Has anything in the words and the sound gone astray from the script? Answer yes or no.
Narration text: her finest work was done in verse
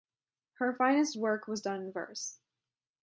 no